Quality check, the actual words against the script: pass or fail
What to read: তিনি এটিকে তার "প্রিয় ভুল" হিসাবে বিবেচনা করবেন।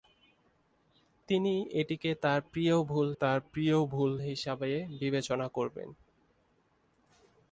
fail